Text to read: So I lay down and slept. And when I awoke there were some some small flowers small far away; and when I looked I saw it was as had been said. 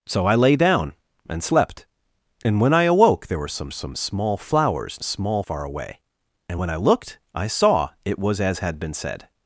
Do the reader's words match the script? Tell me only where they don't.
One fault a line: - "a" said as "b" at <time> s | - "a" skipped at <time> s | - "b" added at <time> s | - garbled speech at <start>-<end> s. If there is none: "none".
none